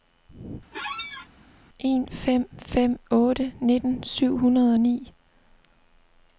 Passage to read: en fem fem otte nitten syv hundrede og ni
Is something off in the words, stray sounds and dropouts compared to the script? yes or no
yes